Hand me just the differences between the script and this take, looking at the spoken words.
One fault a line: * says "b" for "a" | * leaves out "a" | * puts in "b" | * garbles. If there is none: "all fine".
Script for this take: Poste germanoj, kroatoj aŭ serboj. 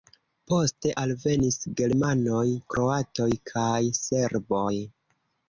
* puts in "alvenis"
* says "kaj" for "aŭ"